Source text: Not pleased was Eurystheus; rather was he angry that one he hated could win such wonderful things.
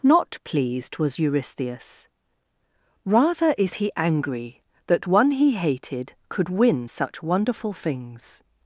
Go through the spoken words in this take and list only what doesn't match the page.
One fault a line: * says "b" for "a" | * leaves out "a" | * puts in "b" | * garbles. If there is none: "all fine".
* says "is" for "was"